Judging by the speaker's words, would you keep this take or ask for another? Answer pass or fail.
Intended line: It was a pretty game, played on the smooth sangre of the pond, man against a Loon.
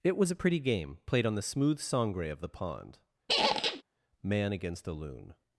pass